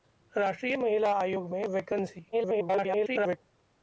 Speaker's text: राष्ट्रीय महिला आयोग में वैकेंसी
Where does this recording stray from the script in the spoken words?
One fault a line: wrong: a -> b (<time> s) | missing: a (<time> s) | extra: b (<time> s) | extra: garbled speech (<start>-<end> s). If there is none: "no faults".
extra: garbled speech (2.3-3.4 s)